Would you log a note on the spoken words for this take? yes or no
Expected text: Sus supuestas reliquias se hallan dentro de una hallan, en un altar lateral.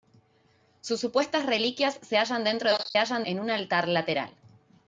no